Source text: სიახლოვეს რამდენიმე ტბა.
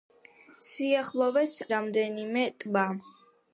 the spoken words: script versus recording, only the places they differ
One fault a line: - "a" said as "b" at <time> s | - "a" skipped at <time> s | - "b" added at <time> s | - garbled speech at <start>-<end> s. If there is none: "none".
none